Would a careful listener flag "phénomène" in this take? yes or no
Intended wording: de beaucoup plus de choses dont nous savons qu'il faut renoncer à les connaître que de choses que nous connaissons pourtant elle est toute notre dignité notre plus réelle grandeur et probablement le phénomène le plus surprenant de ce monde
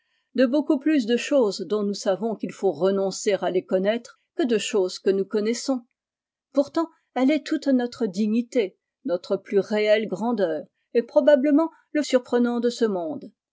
yes